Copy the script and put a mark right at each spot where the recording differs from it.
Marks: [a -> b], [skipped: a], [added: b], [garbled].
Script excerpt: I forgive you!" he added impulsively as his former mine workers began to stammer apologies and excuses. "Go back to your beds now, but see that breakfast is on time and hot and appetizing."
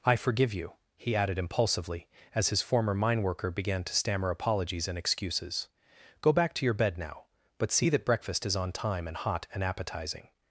I forgive you!" he added impulsively as his former mine [workers -> worker] began to stammer apologies and excuses. "Go back to your [beds -> bed] now, but see that breakfast is on time and hot and appetizing."